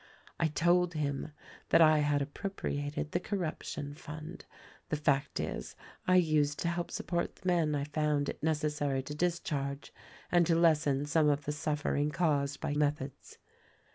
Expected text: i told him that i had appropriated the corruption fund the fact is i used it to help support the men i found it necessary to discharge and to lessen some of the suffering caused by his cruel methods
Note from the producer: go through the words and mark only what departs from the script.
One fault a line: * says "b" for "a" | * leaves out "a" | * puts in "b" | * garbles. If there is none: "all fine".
* leaves out "it"
* leaves out "his cruel"